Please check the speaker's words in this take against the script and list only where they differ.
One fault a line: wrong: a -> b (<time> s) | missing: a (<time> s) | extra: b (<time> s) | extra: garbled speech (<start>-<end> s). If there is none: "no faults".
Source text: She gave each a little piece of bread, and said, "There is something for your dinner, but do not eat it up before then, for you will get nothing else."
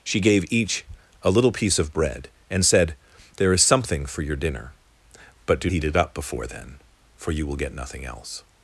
missing: not (5.7 s)